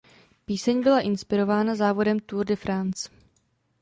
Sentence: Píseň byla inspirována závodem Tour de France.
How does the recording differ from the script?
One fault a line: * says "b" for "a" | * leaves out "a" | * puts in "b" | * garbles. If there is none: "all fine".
all fine